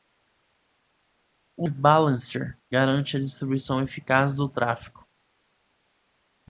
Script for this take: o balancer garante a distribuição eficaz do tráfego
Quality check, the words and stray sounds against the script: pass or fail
pass